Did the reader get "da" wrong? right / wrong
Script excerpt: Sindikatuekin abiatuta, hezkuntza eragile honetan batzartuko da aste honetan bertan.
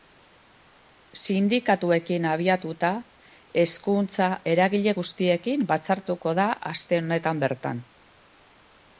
right